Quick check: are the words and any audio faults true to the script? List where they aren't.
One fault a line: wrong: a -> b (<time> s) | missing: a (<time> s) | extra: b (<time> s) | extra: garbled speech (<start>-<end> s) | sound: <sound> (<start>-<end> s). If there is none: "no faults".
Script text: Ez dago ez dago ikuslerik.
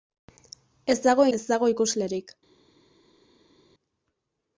no faults